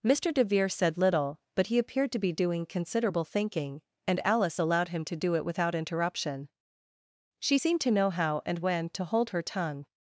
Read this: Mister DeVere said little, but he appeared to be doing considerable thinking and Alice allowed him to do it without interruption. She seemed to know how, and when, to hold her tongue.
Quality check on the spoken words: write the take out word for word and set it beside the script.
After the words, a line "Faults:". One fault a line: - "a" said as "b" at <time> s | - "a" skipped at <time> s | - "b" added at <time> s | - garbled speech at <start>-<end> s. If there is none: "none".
Mister DeVere said little, but he appeared to be doing considerable thinking and Alice allowed him to do it without interruption. She seemed to know how, and when, to hold her tongue.
Faults:
none